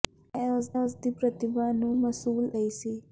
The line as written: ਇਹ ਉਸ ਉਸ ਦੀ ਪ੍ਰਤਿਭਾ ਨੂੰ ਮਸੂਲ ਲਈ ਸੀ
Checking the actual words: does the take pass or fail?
pass